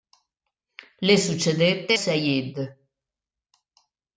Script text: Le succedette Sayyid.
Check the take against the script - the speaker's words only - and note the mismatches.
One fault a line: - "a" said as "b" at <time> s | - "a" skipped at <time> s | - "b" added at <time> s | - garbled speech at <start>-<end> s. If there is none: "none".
none